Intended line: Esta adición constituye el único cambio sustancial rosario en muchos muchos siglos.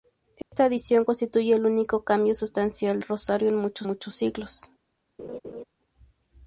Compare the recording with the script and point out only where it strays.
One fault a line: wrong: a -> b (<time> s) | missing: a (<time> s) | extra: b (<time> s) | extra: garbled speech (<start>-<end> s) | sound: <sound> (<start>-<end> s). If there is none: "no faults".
sound: dropout (0.4-0.5 s)
sound: laugh (5.2-5.6 s)